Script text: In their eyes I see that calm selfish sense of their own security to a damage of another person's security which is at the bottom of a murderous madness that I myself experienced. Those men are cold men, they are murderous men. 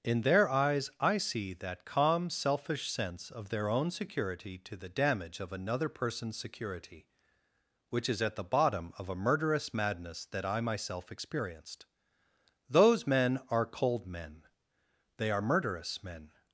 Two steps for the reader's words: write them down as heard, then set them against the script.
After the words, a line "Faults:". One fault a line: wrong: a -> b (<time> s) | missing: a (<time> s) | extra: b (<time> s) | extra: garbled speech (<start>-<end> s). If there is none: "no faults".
In their eyes I see that calm selfish sense of their own security to the damage of another person's security which is at the bottom of a murderous madness that I myself experienced. Those men are cold men, they are murderous men.
Faults:
wrong: a -> the (4.8 s)